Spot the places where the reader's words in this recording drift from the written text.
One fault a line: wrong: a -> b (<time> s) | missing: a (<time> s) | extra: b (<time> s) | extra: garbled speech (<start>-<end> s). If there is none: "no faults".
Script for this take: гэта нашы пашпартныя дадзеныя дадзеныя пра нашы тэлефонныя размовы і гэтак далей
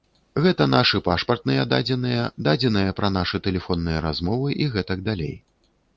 no faults